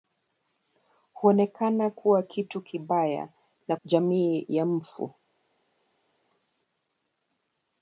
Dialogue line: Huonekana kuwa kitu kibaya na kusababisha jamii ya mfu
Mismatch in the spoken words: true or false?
true